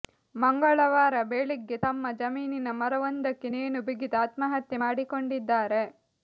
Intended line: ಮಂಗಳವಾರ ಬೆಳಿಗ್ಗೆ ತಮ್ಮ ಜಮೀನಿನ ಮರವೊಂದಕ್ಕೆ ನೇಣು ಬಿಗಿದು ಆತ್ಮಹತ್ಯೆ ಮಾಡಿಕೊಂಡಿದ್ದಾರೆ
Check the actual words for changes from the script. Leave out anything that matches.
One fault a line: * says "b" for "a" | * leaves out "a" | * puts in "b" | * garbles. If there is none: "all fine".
all fine